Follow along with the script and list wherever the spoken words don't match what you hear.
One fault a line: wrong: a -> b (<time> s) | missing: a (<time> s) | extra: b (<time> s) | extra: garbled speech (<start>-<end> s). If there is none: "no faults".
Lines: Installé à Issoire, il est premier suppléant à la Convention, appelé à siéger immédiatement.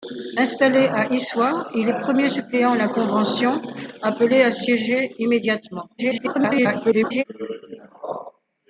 extra: garbled speech (6.0-7.2 s)